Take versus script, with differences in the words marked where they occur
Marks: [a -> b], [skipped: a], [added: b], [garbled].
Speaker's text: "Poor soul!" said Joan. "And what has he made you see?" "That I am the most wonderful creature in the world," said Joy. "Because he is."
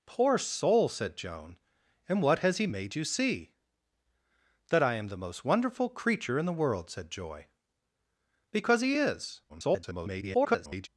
"Poor soul!" said Joan. "And what has he made you see?" "That I am the most wonderful creature in the world," said Joy. "Because he is." [garbled]